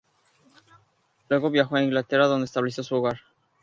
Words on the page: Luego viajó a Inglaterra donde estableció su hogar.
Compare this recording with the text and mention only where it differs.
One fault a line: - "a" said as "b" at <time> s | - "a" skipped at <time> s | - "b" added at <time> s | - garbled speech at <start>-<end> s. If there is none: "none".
none